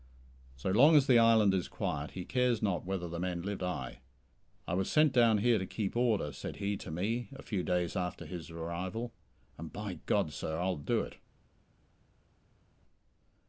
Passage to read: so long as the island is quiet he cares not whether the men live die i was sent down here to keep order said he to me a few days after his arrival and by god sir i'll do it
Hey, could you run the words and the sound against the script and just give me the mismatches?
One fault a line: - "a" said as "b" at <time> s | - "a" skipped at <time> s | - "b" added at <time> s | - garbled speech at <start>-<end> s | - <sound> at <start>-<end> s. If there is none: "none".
none